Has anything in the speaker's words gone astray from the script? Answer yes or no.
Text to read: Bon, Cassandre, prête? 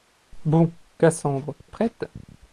no